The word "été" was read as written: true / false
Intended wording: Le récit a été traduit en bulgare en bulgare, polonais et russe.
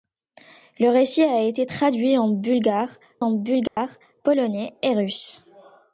true